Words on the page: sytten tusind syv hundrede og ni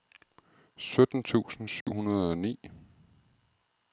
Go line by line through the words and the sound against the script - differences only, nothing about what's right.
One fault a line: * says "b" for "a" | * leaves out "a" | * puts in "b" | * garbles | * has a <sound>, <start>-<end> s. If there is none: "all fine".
* has a dropout, 1.8-1.9 s